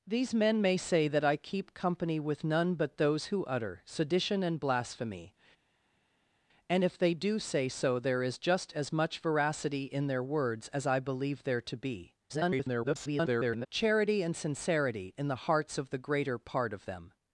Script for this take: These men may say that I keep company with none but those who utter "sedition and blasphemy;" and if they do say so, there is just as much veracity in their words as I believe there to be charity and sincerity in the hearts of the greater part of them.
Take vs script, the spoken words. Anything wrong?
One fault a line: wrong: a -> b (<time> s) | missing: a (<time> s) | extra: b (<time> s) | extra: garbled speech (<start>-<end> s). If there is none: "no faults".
extra: garbled speech (12.3-13.7 s)